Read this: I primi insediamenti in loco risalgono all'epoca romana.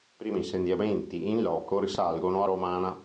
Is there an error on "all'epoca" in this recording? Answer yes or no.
yes